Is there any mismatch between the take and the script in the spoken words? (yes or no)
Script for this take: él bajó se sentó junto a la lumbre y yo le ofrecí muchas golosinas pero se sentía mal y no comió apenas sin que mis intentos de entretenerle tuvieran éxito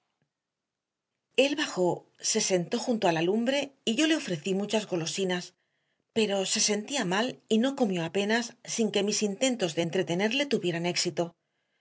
no